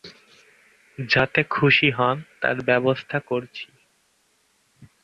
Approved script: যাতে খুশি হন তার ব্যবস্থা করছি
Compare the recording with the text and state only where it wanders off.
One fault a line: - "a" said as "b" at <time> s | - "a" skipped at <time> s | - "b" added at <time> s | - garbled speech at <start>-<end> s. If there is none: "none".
none